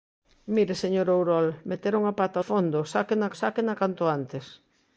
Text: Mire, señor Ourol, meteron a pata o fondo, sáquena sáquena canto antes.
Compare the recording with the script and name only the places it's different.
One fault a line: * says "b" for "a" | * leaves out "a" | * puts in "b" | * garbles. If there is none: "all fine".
all fine